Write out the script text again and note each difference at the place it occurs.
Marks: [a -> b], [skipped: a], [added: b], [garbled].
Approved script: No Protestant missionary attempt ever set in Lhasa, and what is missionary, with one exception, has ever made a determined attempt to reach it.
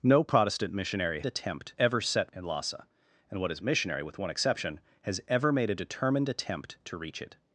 No Protestant missionary attempt ever set in Lhasa, and what is missionary, with one exception, has ever made a determined attempt to reach it.